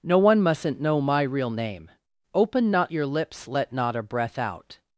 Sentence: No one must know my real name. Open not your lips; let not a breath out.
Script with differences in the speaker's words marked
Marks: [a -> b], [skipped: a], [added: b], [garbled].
No one [must -> mustn't] know my real name. Open not your lips; let not a breath out.